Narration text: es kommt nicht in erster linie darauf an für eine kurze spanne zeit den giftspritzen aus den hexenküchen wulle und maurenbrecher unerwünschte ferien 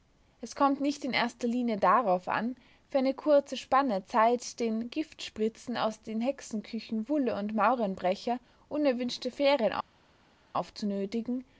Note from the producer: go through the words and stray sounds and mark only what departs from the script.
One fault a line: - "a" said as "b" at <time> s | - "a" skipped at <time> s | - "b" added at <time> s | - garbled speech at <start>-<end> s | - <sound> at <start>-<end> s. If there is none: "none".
none